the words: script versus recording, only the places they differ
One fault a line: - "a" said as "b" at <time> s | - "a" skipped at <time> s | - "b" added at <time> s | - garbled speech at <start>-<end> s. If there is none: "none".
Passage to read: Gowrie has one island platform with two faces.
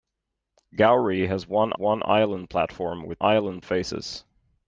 - "one" added at 1.8 s
- "two" said as "island" at 3.2 s